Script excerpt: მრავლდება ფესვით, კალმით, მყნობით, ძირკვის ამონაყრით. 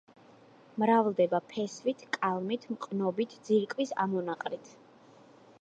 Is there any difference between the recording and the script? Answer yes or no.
no